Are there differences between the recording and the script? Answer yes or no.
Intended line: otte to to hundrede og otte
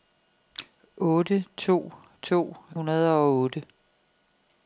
no